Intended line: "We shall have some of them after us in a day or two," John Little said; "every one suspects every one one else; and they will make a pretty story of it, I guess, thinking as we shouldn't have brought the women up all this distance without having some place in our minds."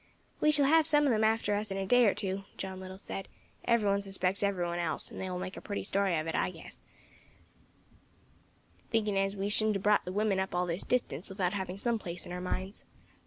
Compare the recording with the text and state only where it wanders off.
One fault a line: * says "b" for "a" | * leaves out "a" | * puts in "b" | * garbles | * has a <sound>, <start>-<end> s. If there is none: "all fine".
* leaves out "one"